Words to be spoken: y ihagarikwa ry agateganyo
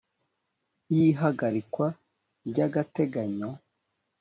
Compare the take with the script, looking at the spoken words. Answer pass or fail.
pass